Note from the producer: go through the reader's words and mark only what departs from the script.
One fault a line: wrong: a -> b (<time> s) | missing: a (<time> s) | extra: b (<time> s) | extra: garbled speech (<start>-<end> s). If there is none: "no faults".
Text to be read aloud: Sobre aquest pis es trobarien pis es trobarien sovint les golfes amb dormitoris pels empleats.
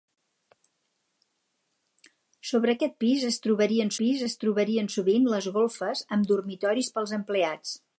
no faults